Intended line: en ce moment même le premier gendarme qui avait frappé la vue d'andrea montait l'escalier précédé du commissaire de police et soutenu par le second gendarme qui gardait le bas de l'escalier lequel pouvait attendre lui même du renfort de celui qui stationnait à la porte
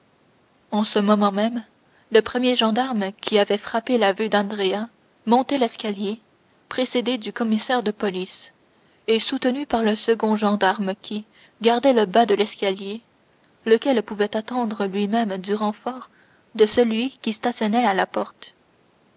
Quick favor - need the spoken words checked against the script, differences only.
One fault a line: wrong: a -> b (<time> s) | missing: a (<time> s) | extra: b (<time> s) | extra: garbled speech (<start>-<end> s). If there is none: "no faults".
no faults